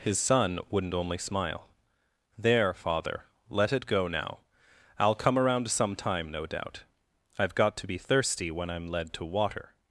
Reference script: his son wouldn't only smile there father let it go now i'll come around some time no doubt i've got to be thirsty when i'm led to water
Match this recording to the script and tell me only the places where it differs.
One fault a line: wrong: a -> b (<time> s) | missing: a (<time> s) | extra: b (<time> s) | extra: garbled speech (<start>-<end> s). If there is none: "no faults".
no faults